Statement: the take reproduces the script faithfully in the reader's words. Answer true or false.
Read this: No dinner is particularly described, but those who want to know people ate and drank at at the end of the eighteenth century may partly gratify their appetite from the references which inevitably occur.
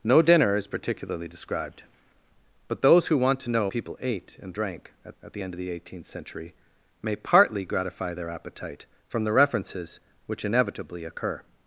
true